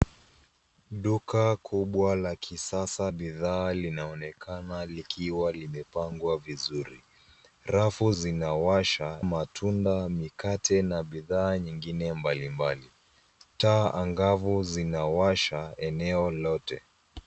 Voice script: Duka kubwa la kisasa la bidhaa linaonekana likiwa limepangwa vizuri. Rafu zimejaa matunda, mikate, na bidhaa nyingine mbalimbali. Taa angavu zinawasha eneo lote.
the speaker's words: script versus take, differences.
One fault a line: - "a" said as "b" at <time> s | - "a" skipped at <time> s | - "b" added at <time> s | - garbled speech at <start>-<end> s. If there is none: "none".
- "la" skipped at 3.1 s
- "zimejaa" said as "zinawasha" at 8.1 s